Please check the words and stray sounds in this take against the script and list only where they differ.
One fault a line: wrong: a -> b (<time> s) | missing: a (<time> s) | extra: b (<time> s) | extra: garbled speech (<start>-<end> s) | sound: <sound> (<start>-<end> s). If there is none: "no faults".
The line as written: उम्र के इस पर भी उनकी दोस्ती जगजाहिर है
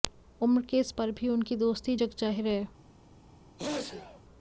sound: sneeze (3.6-4.2 s)